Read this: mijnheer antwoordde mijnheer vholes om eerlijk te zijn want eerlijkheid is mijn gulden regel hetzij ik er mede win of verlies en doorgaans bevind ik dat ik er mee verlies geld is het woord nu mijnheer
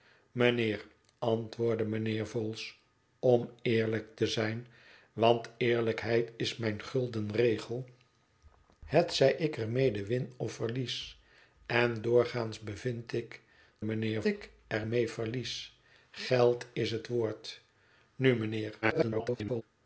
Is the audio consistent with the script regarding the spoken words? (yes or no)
no